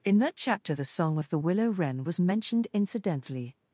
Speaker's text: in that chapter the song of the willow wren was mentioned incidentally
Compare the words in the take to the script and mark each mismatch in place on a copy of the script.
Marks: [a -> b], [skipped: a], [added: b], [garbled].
in that chapter the song of the willow wren was mentioned incidentally